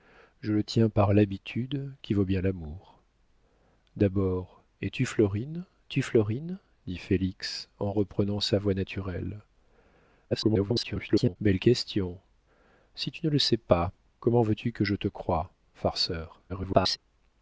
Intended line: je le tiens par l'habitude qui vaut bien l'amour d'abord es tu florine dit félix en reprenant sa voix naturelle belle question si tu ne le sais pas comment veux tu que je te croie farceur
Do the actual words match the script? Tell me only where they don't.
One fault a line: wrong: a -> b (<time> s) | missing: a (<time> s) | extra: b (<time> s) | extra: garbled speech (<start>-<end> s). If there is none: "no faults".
extra: tu florine (5.9 s)
extra: garbled speech (10.3-11.4 s)
extra: garbled speech (16.5-17.0 s)